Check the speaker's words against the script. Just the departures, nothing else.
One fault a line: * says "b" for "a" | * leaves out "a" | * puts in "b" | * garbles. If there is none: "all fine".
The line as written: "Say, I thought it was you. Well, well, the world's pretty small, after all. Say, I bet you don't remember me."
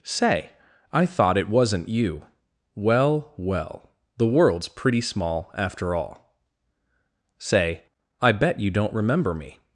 * says "wasn't" for "was"